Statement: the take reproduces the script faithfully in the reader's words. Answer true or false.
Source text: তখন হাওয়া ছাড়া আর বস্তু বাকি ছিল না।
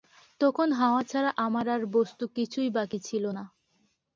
false